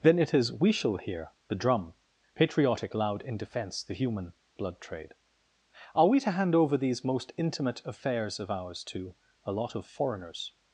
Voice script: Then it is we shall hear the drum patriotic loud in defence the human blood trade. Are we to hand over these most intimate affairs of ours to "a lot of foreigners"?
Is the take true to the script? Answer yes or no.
yes